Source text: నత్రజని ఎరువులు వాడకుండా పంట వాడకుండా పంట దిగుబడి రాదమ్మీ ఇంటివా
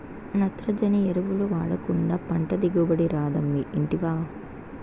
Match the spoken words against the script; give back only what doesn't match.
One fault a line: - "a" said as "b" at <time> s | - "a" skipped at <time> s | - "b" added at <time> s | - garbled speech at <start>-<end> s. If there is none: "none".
- "వాడకుండా పంట" skipped at 2.5 s